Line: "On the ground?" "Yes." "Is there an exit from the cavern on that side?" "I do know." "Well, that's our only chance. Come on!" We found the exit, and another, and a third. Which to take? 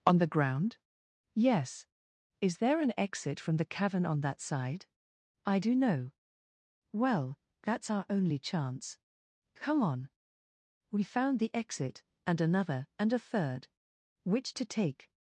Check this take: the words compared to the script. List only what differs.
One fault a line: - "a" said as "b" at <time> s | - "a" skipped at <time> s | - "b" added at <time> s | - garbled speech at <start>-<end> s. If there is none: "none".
none